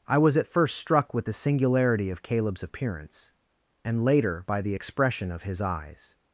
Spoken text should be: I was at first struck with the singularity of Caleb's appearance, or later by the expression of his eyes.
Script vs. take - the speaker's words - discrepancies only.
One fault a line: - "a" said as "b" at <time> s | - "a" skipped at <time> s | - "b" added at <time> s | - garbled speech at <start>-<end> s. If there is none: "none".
- "or" said as "and" at 3.8 s